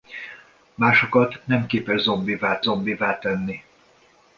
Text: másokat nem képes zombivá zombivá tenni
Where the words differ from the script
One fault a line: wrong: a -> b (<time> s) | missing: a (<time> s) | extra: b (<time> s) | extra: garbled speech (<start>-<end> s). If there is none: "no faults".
no faults